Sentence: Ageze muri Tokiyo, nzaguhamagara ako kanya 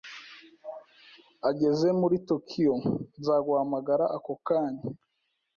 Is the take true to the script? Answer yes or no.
yes